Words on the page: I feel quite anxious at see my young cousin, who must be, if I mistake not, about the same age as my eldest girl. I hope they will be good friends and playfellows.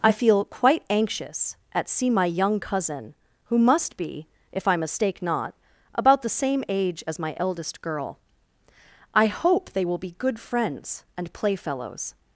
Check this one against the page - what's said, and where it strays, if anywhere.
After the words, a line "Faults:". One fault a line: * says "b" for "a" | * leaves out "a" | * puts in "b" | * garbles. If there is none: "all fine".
I feel quite anxious at see my young cousin, who must be, if I mistake not, about the same age as my eldest girl. I hope they will be good friends and playfellows.
Faults:
all fine